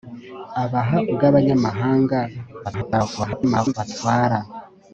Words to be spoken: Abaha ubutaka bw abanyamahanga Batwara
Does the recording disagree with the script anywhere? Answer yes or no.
yes